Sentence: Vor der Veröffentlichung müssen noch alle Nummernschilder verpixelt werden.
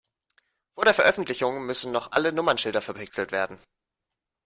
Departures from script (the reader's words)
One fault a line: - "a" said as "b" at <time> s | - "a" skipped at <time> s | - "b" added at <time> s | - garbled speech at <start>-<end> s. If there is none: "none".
none